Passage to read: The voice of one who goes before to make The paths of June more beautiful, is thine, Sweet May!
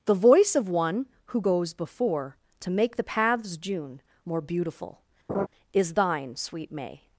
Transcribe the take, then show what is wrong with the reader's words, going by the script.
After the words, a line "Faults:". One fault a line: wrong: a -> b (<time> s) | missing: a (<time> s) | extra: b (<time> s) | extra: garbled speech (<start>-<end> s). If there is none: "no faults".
The voice of one who goes before to make The paths June more beautiful, is thine, Sweet May!
Faults:
missing: of (3.6 s)